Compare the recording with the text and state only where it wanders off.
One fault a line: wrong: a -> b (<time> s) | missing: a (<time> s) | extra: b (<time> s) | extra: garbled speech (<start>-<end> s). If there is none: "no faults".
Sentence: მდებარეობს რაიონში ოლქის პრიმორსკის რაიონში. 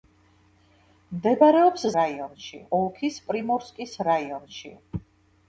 no faults